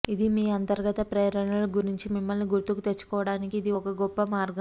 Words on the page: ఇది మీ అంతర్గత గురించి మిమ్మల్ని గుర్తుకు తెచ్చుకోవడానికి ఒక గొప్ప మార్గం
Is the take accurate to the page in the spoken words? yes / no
no